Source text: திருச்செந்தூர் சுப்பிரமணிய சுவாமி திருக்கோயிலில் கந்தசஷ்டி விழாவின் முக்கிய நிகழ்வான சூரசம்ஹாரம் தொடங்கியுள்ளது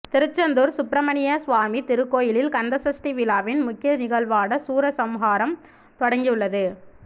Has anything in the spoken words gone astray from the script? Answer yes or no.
no